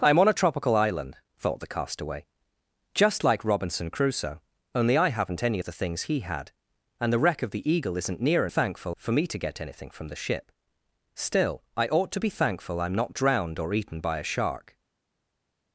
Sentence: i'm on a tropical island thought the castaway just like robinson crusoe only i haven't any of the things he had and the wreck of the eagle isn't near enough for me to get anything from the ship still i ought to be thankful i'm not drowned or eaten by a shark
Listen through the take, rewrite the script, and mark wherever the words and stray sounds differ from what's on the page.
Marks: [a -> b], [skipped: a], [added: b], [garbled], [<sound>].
i'm on a tropical island thought the castaway just like robinson crusoe only i haven't any of the things he had and the wreck of the eagle isn't near [enough -> thankful] for me to get anything from the ship still i ought to be thankful i'm not drowned or eaten by a shark